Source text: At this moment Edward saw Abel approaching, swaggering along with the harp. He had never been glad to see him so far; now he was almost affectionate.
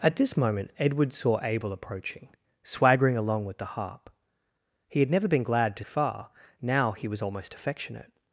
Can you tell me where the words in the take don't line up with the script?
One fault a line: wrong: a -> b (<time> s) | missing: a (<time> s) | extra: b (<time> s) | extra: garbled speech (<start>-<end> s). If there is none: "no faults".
missing: see him so (5.8 s)